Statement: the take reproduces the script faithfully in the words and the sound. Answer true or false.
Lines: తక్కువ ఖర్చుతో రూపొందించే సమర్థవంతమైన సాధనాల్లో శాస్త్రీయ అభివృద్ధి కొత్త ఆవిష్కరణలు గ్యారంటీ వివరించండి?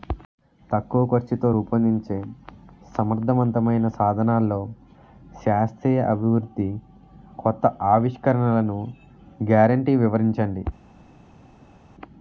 true